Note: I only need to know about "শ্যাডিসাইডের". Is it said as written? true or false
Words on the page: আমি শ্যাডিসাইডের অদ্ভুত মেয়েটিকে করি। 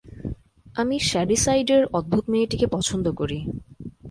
true